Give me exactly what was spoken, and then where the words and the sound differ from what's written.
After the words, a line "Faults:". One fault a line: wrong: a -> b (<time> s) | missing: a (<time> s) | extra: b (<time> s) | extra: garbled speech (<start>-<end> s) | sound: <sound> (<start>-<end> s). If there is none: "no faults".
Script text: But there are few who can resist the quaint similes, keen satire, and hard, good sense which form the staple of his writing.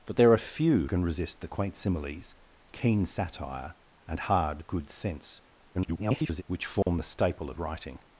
But there are few can resist the quaint similes, keen satire, and hard, good sense [garbled] which form the staple of writing.
Faults:
missing: who (0.9 s)
extra: garbled speech (5.7-6.4 s)
sound: dropout (6.8-6.9 s)
missing: his (7.6 s)